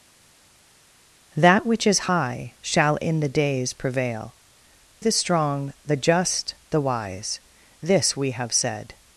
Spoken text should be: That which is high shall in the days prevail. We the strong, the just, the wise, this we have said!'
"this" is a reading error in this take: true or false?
false